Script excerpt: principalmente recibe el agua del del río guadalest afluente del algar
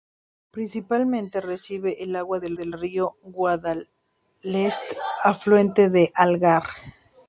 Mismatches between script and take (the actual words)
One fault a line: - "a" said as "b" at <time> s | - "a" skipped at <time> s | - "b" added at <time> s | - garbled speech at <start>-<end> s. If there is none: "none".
none